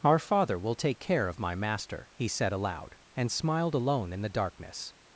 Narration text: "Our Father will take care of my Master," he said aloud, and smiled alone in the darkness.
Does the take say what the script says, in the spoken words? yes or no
yes